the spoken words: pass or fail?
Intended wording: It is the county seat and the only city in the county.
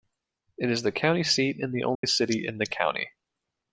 pass